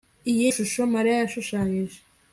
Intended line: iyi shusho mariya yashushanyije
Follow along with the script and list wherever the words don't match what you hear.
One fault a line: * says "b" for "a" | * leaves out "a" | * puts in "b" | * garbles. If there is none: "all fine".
all fine